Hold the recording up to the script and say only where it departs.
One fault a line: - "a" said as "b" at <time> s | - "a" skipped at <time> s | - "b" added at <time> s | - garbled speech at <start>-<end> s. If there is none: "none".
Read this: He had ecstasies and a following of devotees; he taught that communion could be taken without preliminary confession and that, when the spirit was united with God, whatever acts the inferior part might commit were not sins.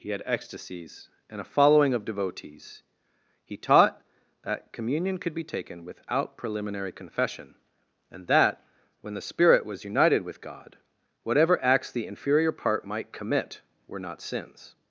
none